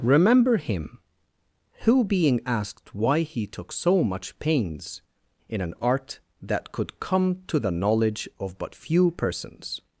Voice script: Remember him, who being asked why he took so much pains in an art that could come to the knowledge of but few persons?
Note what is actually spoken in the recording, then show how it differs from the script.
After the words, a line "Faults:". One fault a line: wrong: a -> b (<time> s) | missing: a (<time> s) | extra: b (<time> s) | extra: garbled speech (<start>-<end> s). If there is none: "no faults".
Remember him, who being asked why he took so much pains in an art that could come to the knowledge of but few persons?
Faults:
no faults